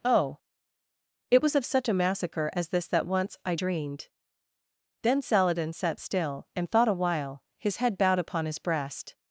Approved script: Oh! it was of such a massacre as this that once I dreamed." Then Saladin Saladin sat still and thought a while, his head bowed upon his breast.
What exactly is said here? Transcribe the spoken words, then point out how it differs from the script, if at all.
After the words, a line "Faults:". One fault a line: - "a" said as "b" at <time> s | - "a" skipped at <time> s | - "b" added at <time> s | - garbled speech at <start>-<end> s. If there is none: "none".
Oh! it was of such a massacre as this that once I dreamed." Then Saladin sat still and thought a while, his head bowed upon his breast.
Faults:
- "Saladin" skipped at 5.7 s